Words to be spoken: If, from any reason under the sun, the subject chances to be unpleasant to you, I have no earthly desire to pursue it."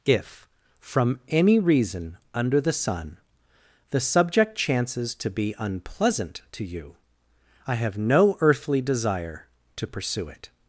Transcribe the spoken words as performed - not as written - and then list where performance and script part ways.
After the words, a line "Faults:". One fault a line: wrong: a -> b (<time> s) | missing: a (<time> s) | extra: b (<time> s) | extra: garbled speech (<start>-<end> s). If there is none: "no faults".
If, from any reason under the sun, the subject chances to be unpleasant to you, I have no earthly desire to pursue it."
Faults:
no faults